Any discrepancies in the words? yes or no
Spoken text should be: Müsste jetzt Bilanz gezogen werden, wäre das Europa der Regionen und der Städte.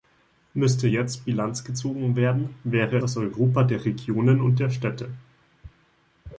no